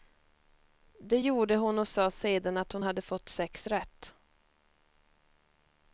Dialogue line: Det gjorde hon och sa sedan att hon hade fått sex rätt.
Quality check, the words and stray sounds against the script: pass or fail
pass